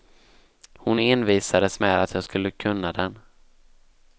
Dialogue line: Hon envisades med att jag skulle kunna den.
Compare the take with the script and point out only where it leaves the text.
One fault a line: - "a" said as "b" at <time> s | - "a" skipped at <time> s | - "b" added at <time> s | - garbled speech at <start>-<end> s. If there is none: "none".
none